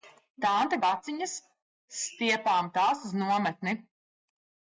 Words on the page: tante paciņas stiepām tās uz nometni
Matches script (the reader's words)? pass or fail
pass